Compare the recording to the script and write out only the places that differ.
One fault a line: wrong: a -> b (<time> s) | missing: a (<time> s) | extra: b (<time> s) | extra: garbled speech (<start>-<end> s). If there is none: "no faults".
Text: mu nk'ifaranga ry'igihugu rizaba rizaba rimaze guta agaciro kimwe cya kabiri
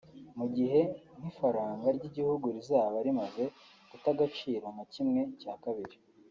extra: gihe (0.6 s)
missing: rizaba (3.0 s)
extra: nka (4.7 s)